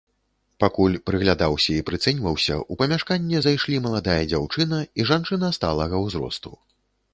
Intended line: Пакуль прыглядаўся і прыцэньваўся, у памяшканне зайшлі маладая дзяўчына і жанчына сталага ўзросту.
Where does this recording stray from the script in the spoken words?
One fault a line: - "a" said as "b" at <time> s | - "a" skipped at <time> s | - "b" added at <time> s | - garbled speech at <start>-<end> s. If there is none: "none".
none